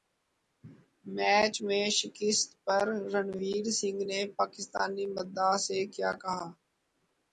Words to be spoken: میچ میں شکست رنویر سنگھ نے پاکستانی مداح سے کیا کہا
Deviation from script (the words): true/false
true